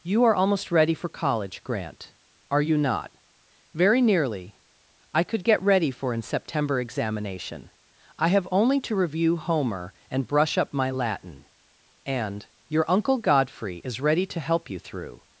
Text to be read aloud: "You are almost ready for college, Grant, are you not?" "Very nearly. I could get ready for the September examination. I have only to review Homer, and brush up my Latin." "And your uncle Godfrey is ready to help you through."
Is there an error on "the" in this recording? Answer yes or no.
yes